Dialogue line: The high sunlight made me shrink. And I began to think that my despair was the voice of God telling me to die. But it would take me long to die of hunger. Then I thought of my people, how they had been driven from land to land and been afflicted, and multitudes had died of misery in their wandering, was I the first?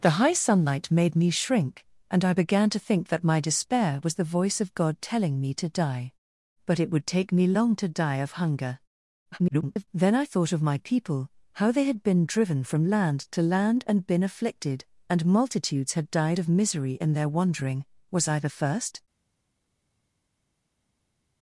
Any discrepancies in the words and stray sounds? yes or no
yes